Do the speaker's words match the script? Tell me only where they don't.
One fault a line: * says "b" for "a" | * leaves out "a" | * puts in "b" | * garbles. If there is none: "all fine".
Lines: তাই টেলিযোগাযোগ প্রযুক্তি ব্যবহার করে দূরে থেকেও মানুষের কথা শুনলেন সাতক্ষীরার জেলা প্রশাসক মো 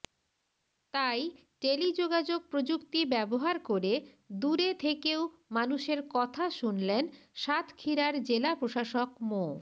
all fine